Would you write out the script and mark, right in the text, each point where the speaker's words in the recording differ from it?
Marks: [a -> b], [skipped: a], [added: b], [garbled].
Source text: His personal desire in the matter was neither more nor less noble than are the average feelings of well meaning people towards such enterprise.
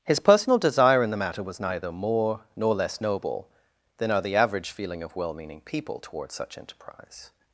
His personal desire in the matter was neither more nor less noble than are the average [feelings -> feeling] of well meaning people towards such enterprise.